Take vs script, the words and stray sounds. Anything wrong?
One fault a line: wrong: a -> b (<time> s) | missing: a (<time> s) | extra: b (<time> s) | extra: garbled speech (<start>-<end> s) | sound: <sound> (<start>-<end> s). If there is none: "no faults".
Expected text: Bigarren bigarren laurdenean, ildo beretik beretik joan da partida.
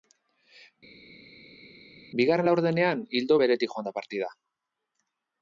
missing: bigarren (2.5 s)
missing: beretik (3.8 s)